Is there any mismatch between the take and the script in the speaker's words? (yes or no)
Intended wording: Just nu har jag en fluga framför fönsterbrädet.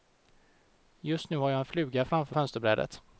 no